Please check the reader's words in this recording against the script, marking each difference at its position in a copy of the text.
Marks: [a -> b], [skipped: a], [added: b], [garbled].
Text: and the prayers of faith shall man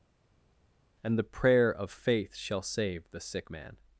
and the [prayers -> prayer] of faith shall [added: save the sick] man